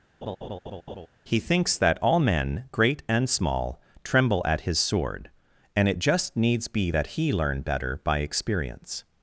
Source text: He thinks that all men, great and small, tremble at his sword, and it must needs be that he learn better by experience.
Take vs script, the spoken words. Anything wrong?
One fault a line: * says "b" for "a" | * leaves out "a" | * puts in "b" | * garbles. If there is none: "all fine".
* says "just" for "must"